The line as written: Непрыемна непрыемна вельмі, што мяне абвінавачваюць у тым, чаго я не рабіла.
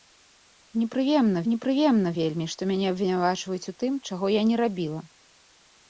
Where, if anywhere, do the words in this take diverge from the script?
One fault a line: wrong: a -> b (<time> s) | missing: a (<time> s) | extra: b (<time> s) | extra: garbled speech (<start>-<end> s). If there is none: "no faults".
no faults